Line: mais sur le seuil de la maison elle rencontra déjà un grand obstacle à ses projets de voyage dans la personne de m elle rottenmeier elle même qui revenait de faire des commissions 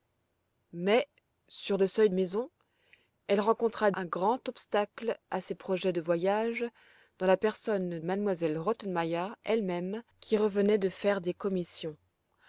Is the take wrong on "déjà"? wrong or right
wrong